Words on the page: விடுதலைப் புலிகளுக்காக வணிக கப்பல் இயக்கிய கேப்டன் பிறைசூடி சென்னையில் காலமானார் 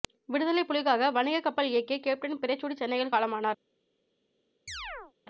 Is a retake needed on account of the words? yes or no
no